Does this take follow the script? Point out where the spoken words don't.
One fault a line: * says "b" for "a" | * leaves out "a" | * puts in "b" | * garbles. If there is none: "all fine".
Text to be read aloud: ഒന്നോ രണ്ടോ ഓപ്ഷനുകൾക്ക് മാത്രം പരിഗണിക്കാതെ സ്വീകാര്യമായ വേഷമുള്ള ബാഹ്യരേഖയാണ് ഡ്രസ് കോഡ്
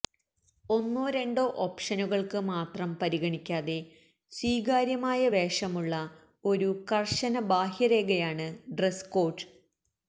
* puts in "ഒരു കർശന"